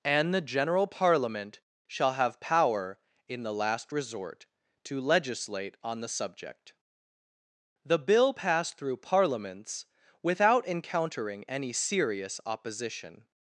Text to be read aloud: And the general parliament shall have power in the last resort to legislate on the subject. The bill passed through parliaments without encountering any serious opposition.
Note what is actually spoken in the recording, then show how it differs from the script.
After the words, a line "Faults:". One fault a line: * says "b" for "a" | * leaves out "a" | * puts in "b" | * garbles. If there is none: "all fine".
And the general parliament shall have power in the last resort to legislate on the subject. The bill passed through parliaments without encountering any serious opposition.
Faults:
all fine